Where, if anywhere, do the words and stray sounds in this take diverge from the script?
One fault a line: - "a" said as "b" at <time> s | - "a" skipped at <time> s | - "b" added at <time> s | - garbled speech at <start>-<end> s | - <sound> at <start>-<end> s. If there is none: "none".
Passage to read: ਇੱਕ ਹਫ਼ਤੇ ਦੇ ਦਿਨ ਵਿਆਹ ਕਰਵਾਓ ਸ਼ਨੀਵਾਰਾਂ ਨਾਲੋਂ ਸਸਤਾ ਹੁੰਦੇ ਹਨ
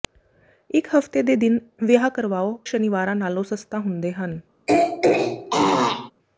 - throat clearing at 4.7-6.1 s